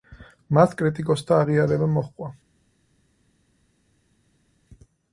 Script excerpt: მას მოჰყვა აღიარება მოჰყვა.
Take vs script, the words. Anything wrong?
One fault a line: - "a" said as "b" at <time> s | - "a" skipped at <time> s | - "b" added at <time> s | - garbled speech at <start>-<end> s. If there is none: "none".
- "მოჰყვა" said as "კრიტიკოსთა" at 0.8 s